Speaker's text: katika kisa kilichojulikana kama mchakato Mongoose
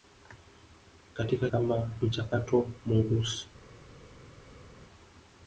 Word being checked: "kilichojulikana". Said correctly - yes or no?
no